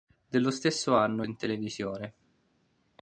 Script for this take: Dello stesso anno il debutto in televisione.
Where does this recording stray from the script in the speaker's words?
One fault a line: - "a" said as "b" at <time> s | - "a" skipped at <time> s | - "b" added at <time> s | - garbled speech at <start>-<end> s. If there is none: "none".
- "il debutto" skipped at 1.2 s